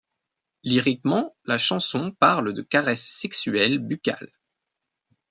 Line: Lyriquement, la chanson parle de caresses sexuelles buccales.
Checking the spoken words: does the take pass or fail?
pass